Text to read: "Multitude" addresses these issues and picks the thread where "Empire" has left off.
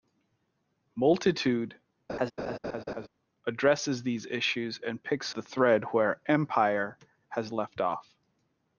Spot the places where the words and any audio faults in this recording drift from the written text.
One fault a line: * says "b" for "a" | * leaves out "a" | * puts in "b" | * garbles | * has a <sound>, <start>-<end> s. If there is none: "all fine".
* has a laugh, 2.1-3.1 s